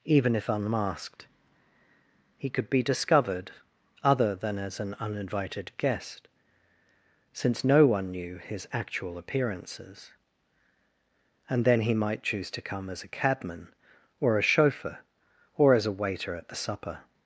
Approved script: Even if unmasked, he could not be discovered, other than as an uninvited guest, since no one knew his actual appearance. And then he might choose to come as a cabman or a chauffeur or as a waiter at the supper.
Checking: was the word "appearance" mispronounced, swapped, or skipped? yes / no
yes